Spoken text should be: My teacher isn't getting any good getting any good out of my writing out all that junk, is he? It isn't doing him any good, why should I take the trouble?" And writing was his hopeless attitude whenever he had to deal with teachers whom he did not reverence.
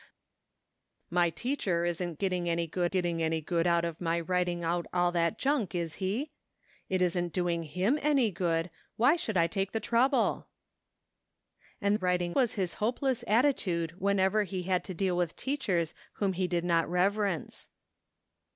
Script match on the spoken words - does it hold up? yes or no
yes